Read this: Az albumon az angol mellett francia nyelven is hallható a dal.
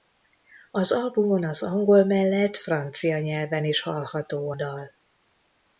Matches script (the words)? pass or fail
fail